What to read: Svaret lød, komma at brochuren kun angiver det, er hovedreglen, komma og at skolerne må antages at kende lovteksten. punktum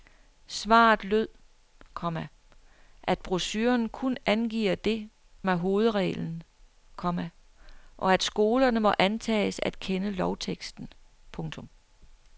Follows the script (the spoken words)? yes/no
yes